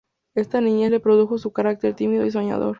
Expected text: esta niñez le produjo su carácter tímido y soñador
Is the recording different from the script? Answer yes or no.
no